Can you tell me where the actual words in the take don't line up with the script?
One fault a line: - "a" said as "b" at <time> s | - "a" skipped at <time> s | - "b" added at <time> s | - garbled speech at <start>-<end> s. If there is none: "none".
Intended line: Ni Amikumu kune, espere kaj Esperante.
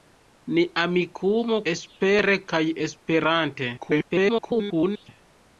- "kune" skipped at 1.6 s
- garbled speech at 3.8-5.1 s